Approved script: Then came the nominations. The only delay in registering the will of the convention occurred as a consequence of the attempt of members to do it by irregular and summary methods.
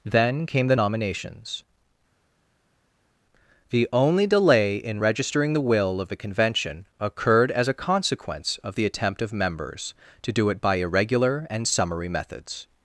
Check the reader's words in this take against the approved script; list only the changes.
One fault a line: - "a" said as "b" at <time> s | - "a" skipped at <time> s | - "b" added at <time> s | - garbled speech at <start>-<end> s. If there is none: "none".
none